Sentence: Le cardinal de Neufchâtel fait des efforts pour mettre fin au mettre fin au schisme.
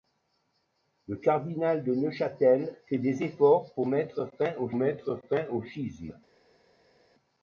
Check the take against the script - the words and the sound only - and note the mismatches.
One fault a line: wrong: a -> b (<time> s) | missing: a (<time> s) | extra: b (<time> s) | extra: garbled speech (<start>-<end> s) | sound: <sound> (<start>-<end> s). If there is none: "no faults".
no faults